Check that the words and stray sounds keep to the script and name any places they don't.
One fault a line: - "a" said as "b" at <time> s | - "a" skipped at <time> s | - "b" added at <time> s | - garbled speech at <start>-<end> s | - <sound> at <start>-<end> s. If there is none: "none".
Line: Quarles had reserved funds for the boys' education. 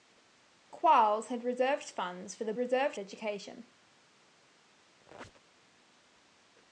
- "boys" said as "reserved" at 2.6 s
- squeak at 5.0-5.6 s